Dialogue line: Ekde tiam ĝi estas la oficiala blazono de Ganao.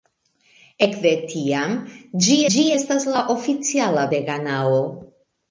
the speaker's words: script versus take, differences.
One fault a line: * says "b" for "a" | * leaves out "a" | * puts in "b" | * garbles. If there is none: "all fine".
* puts in "ĝi"
* leaves out "blazono"